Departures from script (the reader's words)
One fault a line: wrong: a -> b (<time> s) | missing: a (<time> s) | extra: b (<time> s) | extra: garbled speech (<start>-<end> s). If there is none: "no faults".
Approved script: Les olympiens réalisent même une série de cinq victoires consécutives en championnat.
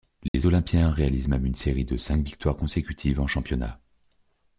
no faults